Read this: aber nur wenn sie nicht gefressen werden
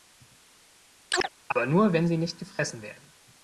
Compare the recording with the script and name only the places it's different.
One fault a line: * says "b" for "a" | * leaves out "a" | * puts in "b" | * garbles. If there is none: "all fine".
all fine